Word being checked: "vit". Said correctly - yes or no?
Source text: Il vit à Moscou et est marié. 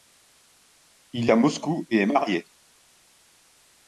no